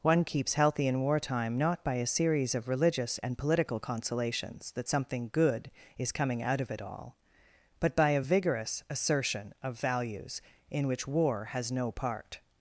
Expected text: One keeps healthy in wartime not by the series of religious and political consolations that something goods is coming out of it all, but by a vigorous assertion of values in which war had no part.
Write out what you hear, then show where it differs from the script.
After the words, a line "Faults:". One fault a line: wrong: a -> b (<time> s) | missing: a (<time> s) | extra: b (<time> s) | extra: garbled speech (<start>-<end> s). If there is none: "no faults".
One keeps healthy in wartime not by a series of religious and political consolations that something good is coming out of it all, but by a vigorous assertion of values in which war has no part.
Faults:
wrong: the -> a (1.9 s)
wrong: goods -> good (5.3 s)
wrong: had -> has (11.5 s)